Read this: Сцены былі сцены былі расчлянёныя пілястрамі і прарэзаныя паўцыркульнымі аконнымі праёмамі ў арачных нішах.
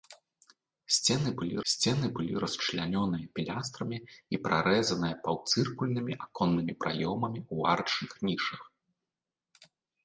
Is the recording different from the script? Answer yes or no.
no